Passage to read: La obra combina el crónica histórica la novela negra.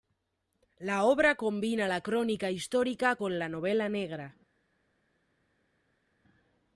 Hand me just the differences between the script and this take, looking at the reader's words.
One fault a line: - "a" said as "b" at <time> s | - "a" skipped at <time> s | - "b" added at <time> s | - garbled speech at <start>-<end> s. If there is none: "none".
- "el" said as "la" at 1.8 s
- "con" added at 3.1 s